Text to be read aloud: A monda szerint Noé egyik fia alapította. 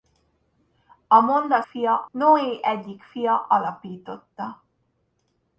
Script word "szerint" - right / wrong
wrong